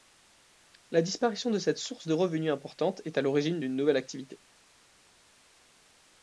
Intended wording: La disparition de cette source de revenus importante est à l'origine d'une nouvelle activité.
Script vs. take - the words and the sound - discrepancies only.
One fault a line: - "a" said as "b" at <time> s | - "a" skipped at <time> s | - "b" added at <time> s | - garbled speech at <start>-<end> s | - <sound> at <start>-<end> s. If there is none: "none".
none